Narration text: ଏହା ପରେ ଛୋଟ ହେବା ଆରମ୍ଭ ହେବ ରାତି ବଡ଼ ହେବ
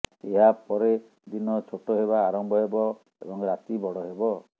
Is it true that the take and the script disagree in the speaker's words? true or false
true